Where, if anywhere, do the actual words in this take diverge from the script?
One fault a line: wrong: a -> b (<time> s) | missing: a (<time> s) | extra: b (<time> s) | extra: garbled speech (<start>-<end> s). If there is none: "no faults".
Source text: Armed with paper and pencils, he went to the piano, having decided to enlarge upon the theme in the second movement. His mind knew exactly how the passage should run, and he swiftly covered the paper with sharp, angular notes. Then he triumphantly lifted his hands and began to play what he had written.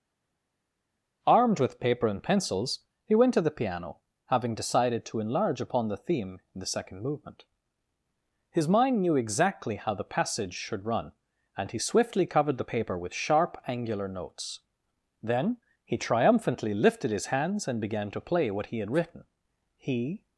extra: He (19.8 s)